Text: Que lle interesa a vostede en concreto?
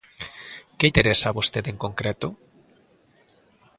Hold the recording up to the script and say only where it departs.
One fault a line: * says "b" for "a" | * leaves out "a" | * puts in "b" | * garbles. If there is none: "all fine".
* leaves out "lle"